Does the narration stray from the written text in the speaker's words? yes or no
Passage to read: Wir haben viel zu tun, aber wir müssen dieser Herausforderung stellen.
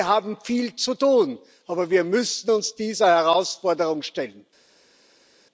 yes